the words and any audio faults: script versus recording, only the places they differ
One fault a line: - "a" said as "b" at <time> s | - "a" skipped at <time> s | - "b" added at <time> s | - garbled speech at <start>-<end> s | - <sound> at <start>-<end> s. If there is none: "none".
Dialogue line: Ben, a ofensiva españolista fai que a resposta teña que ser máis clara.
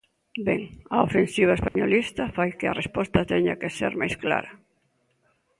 - dropout at 1.7-1.8 s